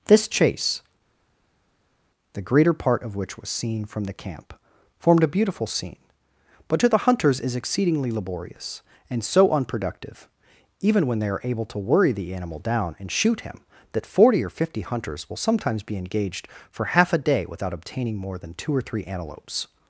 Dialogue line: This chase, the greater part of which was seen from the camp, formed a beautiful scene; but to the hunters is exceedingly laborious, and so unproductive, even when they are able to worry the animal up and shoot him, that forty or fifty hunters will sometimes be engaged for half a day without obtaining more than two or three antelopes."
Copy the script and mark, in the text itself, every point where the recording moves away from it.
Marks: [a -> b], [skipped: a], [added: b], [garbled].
This chase, the greater part of which was seen from the camp, formed a beautiful scene; but to the hunters is exceedingly laborious, and so unproductive, even when they are able to worry the animal [up -> down] and shoot him, that forty or fifty hunters will sometimes be engaged for half a day without obtaining more than two or three antelopes."